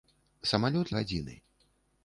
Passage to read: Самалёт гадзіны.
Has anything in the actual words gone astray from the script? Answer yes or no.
no